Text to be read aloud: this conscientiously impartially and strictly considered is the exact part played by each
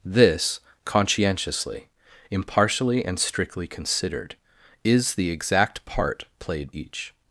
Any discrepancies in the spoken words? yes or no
yes